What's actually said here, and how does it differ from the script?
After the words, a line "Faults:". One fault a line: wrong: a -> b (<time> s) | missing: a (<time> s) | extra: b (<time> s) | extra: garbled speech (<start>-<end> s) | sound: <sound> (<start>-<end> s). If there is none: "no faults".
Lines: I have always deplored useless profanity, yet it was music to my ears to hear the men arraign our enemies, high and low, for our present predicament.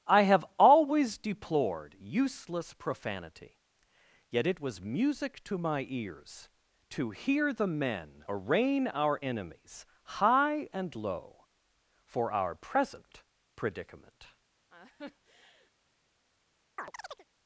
I have always deplored useless profanity, yet it was music to my ears to hear the men arraign our enemies, high and low, for our present predicament.
Faults:
sound: laugh (14.7-15.7 s)
sound: chirp (16.8-17.3 s)